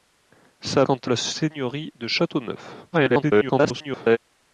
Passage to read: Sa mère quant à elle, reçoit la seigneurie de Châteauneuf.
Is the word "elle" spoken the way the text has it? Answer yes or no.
no